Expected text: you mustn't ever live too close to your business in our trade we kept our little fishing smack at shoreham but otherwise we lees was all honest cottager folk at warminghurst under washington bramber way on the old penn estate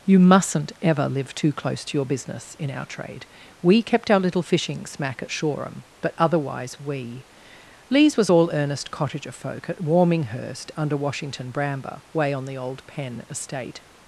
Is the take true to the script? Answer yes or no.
no